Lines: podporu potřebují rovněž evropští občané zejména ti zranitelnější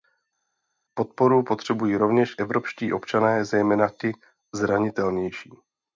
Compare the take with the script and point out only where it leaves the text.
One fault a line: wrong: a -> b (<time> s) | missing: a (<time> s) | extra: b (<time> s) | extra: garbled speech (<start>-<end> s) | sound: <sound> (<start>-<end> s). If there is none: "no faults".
no faults